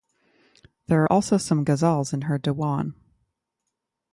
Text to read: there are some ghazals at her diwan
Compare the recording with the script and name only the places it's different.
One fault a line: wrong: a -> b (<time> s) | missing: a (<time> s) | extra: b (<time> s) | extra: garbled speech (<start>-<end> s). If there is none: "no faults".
extra: also (1.1 s)
wrong: at -> in (2.1 s)